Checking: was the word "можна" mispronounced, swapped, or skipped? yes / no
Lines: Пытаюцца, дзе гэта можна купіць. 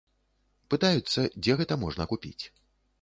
no